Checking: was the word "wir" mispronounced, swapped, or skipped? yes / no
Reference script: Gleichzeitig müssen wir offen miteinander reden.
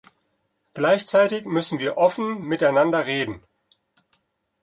no